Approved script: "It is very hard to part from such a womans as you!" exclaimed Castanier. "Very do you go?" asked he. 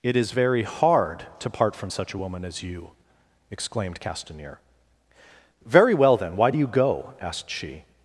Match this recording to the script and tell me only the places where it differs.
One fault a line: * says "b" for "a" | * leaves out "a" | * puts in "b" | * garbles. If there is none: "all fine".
* says "woman" for "womans"
* puts in "well then why"
* says "she" for "he"